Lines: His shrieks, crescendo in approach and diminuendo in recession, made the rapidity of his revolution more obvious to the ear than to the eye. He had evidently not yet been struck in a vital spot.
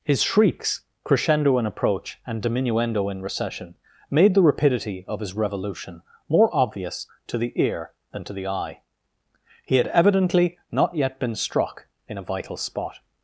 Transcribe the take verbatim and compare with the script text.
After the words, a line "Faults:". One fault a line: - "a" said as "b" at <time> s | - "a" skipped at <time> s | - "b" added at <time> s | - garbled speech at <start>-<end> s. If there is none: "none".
His shrieks, crescendo in approach and diminuendo in recession, made the rapidity of his revolution more obvious to the ear than to the eye. He had evidently not yet been struck in a vital spot.
Faults:
none